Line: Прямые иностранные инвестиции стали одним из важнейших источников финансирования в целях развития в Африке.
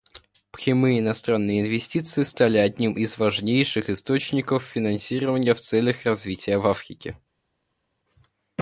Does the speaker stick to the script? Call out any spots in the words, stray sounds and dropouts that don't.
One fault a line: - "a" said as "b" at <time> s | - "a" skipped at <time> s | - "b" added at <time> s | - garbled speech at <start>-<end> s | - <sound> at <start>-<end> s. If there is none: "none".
none